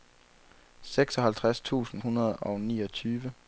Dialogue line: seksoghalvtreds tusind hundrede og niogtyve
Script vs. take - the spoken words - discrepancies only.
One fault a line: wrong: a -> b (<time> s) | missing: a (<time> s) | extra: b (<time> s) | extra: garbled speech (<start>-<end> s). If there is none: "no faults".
no faults